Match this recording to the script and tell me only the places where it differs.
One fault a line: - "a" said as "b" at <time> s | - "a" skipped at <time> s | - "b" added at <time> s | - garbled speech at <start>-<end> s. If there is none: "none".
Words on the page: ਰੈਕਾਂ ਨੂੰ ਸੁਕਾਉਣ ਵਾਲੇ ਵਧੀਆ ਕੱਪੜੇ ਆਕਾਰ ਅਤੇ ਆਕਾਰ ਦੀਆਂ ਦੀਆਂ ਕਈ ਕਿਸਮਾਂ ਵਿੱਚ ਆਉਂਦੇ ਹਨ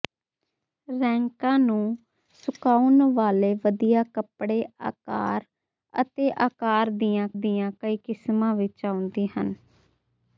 none